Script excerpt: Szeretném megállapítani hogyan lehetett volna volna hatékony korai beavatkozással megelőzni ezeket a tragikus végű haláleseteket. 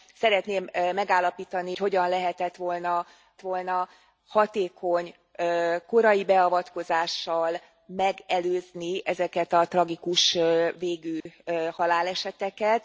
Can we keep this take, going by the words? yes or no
yes